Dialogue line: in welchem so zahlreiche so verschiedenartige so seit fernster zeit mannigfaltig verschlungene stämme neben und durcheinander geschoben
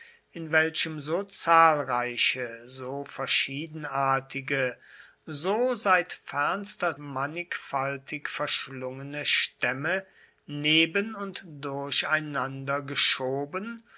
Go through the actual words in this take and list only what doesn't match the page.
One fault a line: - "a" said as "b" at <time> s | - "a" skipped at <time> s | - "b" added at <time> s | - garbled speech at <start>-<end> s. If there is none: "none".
- "zeit" skipped at 7.0 s